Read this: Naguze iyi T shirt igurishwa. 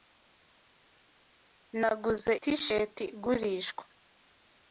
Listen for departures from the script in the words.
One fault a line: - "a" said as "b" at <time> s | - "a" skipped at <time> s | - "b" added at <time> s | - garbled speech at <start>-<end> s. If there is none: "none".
- "iyi" skipped at 2.3 s